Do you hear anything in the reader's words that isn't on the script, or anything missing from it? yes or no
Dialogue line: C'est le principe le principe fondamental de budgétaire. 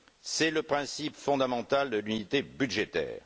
yes